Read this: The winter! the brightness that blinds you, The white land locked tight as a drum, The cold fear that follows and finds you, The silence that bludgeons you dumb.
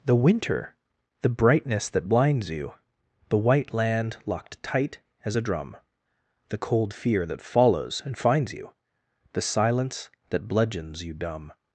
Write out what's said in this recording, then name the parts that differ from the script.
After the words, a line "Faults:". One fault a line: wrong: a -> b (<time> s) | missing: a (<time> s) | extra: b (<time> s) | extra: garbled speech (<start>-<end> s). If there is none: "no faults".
The winter! the brightness that blinds you, The white land locked tight as a drum, The cold fear that follows and finds you, The silence that bludgeons you dumb.
Faults:
no faults